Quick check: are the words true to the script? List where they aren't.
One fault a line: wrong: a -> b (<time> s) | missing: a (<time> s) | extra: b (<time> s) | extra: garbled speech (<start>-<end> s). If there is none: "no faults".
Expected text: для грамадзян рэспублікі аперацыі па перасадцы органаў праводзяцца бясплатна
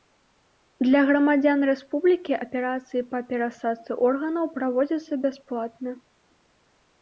no faults